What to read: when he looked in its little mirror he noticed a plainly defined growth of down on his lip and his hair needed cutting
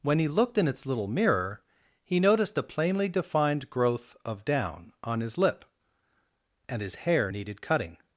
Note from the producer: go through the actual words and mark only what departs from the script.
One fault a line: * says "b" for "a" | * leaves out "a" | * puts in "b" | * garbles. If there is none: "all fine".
all fine